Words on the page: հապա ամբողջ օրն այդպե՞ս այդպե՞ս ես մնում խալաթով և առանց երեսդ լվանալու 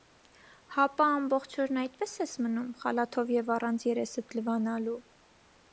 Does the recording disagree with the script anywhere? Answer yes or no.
yes